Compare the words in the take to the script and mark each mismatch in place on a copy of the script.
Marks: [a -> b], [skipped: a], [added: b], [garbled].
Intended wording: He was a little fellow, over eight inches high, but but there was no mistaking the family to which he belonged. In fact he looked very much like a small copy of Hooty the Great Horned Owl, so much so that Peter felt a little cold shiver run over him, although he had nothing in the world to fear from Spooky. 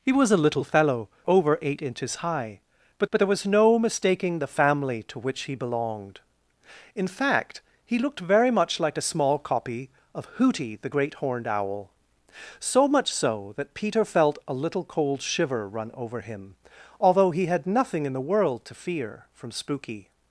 He was a little fellow, over eight inches high, but but there was no mistaking the family to which he belonged. In fact he looked very much like a small copy of Hooty the Great Horned Owl, so much so that Peter felt a little cold shiver run over him, although he had nothing in the world to fear from Spooky.